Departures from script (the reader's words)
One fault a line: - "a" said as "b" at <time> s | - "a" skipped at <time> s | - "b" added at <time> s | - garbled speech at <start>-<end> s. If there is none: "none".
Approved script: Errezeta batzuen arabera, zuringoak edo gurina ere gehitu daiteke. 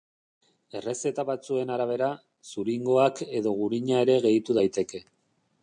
none